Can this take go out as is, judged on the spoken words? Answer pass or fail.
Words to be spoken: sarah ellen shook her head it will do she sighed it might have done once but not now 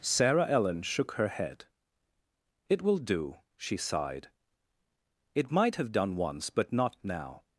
pass